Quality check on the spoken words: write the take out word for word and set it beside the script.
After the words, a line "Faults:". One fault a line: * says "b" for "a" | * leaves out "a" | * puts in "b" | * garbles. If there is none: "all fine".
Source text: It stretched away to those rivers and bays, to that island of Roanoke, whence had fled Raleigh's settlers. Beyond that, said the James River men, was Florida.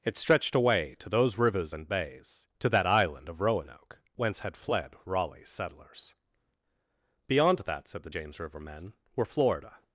It stretched away to those rivers and bays, to that island of Roanoke, whence had fled Raleigh's settlers. Beyond that, said the James River men, were Florida.
Faults:
* says "were" for "was"